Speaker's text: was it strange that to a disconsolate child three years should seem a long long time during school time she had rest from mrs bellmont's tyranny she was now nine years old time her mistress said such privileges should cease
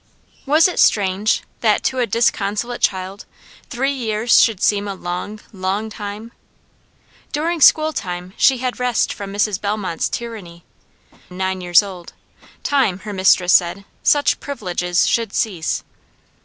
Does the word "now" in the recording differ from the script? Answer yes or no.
yes